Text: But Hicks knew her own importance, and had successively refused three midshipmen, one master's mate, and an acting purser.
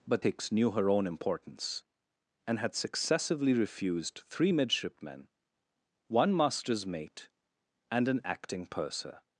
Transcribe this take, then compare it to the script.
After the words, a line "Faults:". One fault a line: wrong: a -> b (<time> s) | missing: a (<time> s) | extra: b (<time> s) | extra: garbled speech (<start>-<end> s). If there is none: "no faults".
But Hicks knew her own importance, and had successively refused three midshipmen, one master's mate, and an acting purser.
Faults:
no faults